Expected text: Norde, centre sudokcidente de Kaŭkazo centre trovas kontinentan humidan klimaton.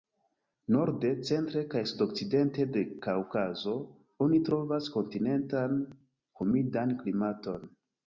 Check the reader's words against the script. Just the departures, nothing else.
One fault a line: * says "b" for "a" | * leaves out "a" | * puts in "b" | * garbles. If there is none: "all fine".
* puts in "kaj"
* says "oni" for "centre"